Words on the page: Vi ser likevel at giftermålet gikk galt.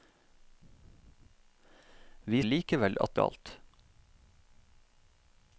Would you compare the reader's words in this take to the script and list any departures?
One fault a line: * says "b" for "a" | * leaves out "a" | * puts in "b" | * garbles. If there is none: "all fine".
* leaves out "ser"
* leaves out "giftermålet gikk"